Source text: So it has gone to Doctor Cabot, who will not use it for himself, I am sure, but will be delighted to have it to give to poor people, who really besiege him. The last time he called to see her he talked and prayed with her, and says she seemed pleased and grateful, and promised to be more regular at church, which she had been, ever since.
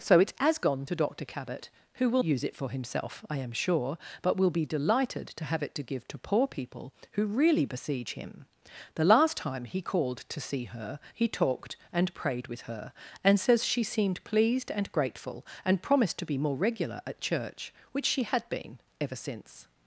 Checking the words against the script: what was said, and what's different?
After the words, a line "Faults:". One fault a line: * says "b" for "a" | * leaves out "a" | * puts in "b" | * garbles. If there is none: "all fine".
So it has gone to Doctor Cabot, who will use it for himself, I am sure, but will be delighted to have it to give to poor people, who really besiege him. The last time he called to see her he talked and prayed with her, and says she seemed pleased and grateful, and promised to be more regular at church, which she had been, ever since.
Faults:
* leaves out "not"